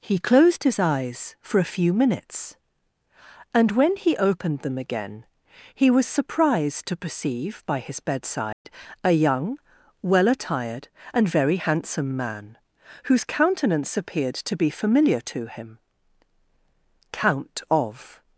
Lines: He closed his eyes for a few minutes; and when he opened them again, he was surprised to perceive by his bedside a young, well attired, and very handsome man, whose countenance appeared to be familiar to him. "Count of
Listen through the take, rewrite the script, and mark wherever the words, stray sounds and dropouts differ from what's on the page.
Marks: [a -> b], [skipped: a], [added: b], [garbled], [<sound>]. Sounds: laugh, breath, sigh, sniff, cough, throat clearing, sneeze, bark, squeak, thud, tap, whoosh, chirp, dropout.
He closed his eyes for a few minutes; and when he opened them again, he was surprised to perceive by his bedside [dropout] a young, well attired, and very handsome man, whose countenance appeared to be familiar to him. "Count of